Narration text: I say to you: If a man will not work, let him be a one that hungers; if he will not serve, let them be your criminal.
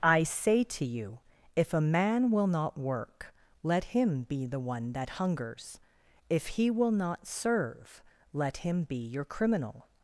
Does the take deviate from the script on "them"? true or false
true